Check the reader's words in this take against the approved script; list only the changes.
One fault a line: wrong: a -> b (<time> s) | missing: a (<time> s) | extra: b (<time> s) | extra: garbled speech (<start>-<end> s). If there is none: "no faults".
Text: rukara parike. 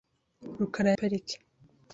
no faults